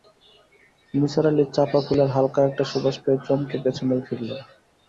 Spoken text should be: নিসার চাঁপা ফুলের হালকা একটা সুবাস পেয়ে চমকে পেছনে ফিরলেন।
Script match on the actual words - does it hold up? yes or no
no